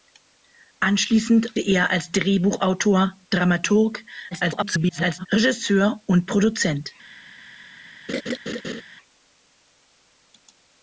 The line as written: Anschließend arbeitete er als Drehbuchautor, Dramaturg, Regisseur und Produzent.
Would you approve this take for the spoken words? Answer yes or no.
no